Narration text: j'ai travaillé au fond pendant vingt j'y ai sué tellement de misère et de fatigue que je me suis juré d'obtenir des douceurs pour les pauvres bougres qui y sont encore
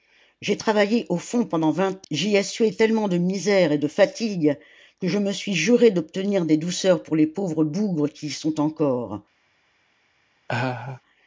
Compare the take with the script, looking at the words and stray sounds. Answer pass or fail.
fail